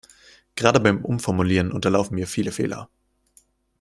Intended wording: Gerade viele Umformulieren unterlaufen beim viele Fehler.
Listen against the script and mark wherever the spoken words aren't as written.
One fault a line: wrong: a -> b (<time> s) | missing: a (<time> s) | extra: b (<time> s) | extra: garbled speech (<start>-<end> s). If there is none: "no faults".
wrong: viele -> beim (0.8 s)
wrong: beim -> mir (2.1 s)